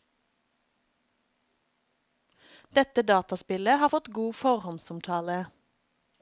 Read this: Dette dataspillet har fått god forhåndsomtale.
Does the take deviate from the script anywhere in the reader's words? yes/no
no